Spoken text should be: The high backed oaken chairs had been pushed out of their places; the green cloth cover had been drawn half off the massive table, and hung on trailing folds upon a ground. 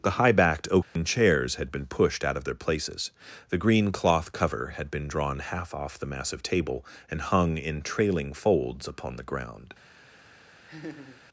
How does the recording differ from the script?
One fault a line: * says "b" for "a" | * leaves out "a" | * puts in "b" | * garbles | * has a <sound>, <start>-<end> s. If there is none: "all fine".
* has a dropout, 0.8-1.0 s
* says "in" for "on"
* says "the" for "a"
* has a laugh, 10.7-11.2 s